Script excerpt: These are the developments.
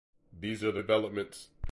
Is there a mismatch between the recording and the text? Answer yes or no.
no